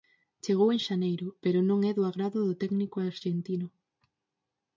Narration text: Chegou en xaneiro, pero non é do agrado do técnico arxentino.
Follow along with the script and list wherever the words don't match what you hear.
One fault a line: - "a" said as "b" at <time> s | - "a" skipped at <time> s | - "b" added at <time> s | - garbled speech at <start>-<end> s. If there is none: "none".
none